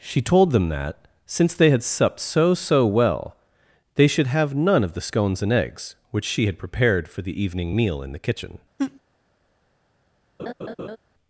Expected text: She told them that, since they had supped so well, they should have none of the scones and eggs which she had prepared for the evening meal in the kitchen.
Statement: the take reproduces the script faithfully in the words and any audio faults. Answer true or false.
false